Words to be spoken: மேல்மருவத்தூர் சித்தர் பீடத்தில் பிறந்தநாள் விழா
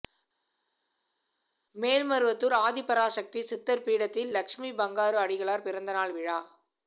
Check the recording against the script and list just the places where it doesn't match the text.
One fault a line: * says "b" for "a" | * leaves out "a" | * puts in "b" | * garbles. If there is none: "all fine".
* puts in "ஆதிபராசக்தி"
* puts in "லட்சுமி பங்காரு அடிகளார்"